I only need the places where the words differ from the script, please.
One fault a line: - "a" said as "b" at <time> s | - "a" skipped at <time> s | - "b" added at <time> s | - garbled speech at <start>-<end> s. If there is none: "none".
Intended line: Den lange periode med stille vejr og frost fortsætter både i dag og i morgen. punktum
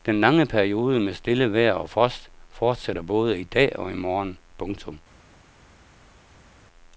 none